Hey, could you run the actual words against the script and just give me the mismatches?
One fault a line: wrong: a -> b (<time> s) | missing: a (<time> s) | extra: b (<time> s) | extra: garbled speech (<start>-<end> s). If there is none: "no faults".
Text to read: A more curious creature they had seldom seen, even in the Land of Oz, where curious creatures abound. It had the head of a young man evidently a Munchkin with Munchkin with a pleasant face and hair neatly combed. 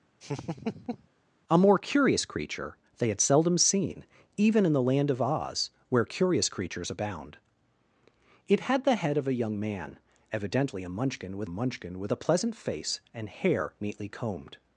no faults